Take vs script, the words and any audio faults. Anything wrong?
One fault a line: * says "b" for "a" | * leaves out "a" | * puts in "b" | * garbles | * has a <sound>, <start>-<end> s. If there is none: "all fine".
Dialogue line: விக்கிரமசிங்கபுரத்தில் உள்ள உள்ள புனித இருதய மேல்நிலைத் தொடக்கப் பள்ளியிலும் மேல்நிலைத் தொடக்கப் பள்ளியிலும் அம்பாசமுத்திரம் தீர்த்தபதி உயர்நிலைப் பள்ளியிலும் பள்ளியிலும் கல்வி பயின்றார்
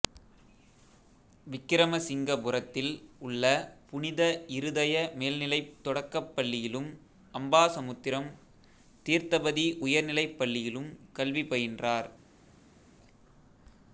* leaves out "உள்ள"
* leaves out "மேல்நிலைத் தொடக்கப் பள்ளியிலும்"
* leaves out "பள்ளியிலும்"